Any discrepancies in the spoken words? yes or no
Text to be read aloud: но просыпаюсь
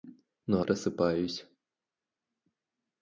no